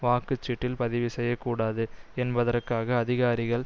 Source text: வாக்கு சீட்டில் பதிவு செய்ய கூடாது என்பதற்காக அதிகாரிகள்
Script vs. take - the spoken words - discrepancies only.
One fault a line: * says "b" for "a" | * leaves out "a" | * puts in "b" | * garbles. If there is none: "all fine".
all fine